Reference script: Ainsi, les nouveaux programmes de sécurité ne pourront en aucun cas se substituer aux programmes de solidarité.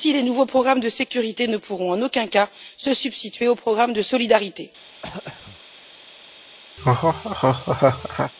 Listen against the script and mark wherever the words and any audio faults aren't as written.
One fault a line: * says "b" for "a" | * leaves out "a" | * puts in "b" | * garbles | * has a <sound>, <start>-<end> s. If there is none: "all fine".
* has a throat clearing, 5.0-5.6 s
* has a laugh, 6.8-8.3 s